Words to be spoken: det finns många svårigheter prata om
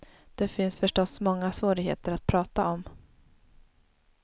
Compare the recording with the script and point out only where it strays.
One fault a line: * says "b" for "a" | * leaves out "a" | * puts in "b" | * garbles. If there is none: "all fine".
* puts in "förstås"
* puts in "att"